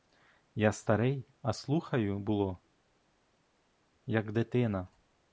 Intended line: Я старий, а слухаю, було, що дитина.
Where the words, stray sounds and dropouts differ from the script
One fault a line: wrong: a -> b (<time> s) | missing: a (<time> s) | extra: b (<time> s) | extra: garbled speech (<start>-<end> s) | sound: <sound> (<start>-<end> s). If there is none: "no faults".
wrong: що -> як (4.1 s)